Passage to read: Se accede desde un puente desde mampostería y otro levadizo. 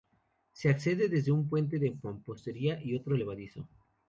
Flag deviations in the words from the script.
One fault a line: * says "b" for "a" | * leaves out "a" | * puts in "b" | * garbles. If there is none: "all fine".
* says "de" for "desde"